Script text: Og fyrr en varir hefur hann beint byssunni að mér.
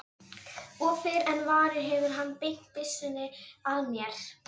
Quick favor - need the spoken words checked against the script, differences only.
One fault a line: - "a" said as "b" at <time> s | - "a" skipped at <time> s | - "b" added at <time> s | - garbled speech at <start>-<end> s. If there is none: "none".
none